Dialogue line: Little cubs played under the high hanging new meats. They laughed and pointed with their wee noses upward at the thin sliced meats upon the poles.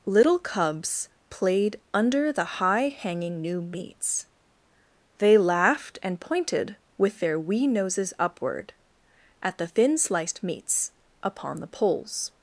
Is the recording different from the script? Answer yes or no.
no